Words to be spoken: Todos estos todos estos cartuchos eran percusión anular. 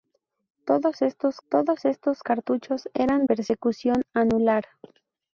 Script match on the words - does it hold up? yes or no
yes